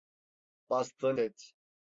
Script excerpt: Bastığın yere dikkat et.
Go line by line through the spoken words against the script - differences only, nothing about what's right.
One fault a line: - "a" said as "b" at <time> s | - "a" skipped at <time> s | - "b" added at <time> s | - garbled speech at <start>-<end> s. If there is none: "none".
- "yere dikkat" skipped at 1.2 s